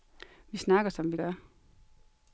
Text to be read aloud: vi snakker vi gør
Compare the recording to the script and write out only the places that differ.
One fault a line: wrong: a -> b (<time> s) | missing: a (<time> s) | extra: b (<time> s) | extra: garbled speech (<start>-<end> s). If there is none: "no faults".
extra: som (0.9 s)